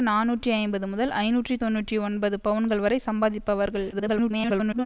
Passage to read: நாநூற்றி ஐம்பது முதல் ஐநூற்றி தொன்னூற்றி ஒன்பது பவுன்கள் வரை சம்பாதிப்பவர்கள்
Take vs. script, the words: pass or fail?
fail